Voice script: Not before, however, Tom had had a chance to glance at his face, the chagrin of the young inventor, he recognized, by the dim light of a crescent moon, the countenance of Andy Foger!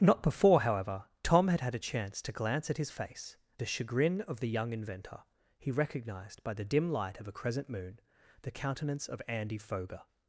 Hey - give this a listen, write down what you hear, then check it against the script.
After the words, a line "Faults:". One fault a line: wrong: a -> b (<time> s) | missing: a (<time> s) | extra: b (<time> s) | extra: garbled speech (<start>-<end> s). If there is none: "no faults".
Not before, however, Tom had had a chance to glance at his face, the chagrin of the young inventor, he recognized, by the dim light of a crescent moon, the countenance of Andy Foger!
Faults:
no faults